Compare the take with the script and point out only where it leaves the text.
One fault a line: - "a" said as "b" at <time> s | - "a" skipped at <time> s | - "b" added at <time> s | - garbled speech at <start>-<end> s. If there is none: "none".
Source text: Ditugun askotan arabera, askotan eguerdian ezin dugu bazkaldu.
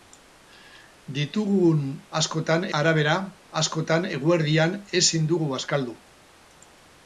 none